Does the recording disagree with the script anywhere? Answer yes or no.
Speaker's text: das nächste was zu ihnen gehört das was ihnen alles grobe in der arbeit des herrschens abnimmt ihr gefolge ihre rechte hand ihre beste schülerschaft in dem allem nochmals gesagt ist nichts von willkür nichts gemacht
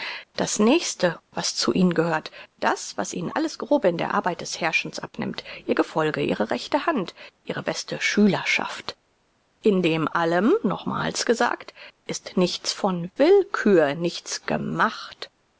no